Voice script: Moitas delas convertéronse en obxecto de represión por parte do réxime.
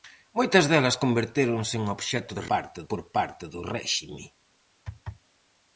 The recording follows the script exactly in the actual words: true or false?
false